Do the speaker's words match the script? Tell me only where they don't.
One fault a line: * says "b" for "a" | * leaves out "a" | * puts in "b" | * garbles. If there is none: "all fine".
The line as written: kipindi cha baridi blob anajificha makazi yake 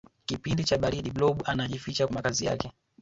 all fine